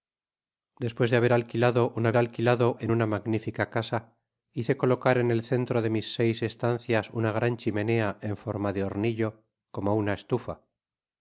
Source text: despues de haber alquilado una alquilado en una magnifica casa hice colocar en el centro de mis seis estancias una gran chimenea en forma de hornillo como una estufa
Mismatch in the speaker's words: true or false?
false